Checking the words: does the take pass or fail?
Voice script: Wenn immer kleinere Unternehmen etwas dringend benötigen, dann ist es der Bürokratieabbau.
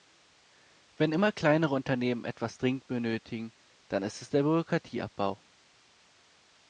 pass